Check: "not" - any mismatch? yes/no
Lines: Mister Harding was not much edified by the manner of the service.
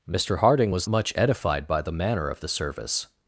yes